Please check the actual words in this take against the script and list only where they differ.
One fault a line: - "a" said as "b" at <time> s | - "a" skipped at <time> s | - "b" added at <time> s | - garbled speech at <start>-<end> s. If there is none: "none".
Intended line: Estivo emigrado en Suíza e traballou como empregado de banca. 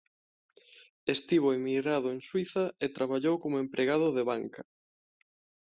none